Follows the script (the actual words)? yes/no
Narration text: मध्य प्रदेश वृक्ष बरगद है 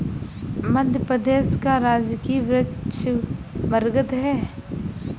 no